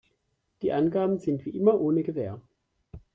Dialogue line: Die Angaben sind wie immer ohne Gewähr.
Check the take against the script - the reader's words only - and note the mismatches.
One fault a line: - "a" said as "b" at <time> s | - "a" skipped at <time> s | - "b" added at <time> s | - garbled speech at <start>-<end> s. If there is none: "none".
none